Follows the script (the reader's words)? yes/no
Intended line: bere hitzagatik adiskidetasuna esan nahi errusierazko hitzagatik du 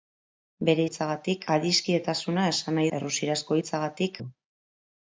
yes